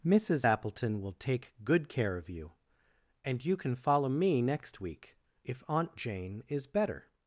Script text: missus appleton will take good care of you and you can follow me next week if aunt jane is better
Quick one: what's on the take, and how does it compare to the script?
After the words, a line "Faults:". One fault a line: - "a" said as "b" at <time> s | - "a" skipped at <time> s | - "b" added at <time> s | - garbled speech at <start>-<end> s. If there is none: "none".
missus appleton will take good care of you and you can follow me next week if aunt jane is better
Faults:
none